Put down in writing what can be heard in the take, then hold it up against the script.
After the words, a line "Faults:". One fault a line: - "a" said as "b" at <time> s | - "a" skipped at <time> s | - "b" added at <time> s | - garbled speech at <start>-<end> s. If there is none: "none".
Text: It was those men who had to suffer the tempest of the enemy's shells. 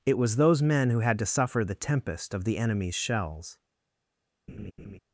It was those men who had to suffer the tempest of the enemy's shells.
Faults:
none